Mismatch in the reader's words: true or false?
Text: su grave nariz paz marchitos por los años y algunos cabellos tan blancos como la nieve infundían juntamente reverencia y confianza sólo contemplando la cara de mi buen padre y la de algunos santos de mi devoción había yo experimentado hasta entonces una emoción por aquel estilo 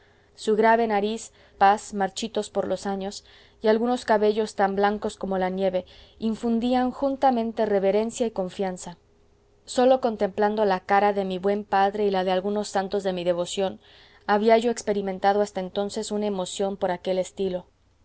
false